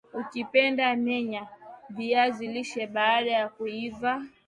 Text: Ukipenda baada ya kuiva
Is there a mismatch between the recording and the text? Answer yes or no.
yes